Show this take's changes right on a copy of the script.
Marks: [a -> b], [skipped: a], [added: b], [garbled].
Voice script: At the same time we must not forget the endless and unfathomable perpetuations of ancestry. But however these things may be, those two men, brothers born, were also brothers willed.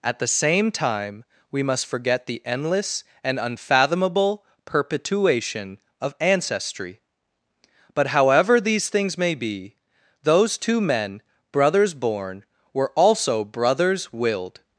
At the same time we must [skipped: not] forget the endless and unfathomable [perpetuations -> perpetuation] of ancestry. But however these things may be, those two men, brothers born, were also brothers willed.